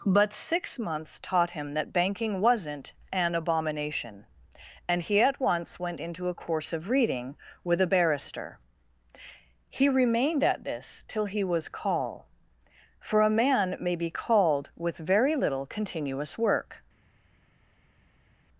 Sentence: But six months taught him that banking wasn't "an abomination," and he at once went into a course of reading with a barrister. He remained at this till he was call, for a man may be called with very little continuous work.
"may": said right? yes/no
yes